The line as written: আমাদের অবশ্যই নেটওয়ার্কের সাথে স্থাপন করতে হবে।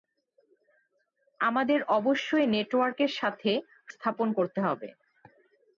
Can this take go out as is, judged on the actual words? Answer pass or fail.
pass